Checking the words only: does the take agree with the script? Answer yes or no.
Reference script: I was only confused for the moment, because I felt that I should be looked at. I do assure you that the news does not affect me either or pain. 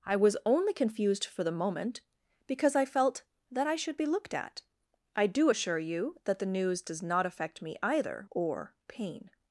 yes